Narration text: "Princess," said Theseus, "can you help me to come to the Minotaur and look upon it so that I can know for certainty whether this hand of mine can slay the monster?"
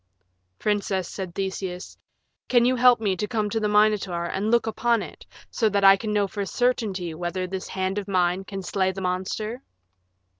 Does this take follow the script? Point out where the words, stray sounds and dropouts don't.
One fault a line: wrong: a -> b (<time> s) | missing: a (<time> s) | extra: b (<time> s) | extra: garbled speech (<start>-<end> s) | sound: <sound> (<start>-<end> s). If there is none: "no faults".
no faults